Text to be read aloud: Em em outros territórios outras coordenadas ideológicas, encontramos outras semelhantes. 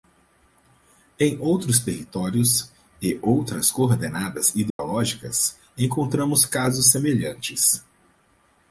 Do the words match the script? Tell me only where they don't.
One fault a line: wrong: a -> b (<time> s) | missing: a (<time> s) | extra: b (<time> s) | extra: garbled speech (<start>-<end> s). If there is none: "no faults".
missing: em (1.4 s)
extra: e (3.0 s)
wrong: outras -> casos (6.5 s)